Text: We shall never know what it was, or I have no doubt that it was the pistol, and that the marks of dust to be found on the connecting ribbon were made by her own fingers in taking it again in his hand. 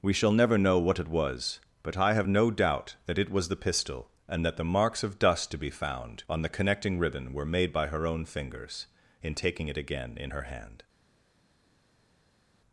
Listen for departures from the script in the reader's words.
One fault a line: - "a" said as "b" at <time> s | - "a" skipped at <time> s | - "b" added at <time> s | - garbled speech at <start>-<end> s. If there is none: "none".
- "or" said as "but" at 1.8 s
- "his" said as "her" at 10.3 s